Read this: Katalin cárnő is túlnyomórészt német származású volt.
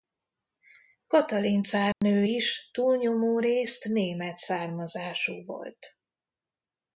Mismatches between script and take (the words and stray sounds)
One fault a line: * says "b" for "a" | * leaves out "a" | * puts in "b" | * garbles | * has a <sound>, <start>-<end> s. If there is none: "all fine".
* has a dropout, 1.9-2.0 s